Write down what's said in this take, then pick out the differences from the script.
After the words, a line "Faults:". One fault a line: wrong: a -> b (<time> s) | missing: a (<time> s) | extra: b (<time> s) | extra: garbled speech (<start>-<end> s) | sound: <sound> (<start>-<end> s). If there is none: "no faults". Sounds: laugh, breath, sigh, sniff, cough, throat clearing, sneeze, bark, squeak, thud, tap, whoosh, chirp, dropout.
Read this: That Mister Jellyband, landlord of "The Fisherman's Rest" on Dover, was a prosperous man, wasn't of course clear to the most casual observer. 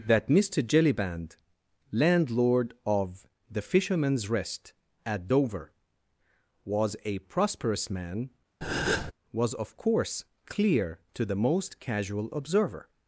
That Mister Jellyband, landlord of "The Fisherman's Rest" at Dover, was a prosperous man, was of course clear to the most casual observer.
Faults:
wrong: on -> at (5.0 s)
sound: breath (8.6-9.1 s)
wrong: wasn't -> was (9.3 s)